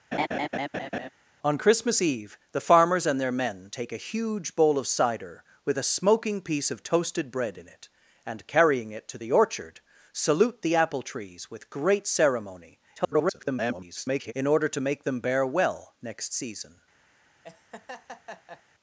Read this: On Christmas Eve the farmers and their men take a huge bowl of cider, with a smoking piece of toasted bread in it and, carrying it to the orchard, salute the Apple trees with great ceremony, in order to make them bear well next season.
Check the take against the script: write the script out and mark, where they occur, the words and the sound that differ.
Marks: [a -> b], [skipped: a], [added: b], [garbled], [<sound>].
[laugh] On Christmas Eve the farmers and their men take a huge bowl of cider, with a smoking piece of toasted bread in it and, carrying it to the orchard, salute the Apple trees with great ceremony, [garbled] in order to make them bear well next season. [laugh]